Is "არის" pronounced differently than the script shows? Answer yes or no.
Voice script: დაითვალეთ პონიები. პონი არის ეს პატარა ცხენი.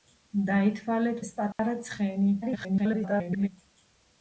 yes